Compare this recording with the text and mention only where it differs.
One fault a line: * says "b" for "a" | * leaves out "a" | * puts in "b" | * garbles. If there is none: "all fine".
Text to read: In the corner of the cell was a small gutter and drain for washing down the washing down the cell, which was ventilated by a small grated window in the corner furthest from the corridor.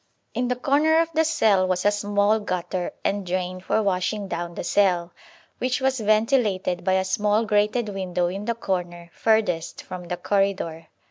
* leaves out "washing down the"